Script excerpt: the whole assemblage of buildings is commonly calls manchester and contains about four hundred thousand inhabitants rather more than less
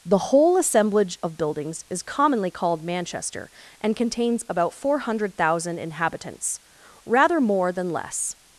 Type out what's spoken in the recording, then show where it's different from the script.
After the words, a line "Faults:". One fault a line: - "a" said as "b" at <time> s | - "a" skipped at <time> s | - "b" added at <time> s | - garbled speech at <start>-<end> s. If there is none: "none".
the whole assemblage of buildings is commonly called manchester and contains about four hundred thousand inhabitants rather more than less
Faults:
- "calls" said as "called" at 2.5 s